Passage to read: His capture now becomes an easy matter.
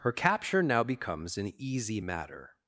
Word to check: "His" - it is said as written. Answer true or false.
false